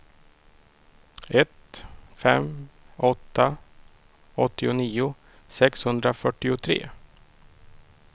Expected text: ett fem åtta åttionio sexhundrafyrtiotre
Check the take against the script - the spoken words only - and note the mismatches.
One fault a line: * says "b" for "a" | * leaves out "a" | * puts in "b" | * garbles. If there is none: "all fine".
all fine